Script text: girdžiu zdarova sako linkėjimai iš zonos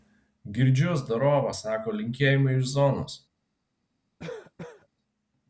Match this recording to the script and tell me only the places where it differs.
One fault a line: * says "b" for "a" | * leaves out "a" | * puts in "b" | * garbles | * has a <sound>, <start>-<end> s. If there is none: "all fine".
* has a cough, 4.2-4.9 s